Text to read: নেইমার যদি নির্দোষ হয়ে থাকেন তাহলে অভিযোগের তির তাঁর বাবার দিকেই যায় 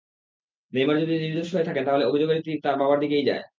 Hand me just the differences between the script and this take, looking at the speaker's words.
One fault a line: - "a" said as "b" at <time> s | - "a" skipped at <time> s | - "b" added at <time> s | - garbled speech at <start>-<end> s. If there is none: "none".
none